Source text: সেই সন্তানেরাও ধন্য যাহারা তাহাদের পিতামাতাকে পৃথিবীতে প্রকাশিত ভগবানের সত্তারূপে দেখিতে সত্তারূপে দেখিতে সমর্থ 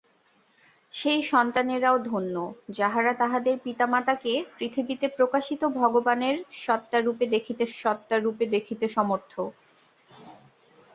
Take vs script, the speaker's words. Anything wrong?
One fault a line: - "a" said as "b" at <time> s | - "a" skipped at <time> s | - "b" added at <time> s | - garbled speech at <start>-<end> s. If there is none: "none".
none